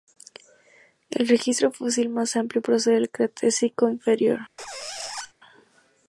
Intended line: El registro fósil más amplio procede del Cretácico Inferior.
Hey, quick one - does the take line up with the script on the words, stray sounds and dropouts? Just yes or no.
no